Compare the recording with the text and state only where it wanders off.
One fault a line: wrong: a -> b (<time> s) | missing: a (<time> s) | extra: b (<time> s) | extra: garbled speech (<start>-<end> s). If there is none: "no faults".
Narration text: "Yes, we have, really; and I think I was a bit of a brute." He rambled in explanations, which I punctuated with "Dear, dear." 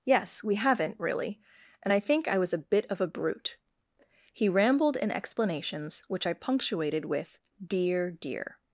wrong: have -> haven't (0.6 s)